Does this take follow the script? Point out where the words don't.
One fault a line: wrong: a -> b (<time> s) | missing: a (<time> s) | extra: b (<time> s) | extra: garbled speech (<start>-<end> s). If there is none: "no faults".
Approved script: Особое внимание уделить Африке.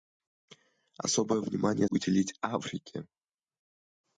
no faults